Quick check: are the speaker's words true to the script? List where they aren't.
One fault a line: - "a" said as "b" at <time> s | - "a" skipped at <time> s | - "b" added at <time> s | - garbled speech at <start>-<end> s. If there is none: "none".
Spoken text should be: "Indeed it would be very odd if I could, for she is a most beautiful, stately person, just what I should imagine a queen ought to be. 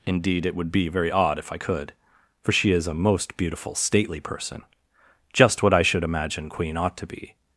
- "a" skipped at 6.5 s